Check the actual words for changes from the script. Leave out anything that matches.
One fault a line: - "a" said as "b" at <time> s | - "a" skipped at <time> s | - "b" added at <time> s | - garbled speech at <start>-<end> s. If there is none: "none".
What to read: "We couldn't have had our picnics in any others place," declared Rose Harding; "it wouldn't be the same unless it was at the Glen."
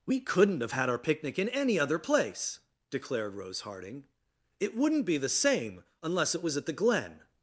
- "picnics" said as "picnic" at 1.0 s
- "others" said as "other" at 1.8 s